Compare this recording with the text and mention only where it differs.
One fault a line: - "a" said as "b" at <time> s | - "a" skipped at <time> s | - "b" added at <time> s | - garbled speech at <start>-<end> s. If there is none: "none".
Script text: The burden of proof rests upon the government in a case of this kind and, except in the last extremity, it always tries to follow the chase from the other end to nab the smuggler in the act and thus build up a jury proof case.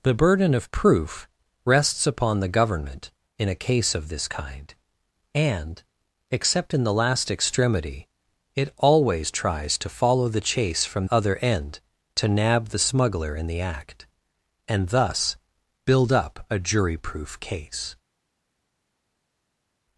- "the" skipped at 11.0 s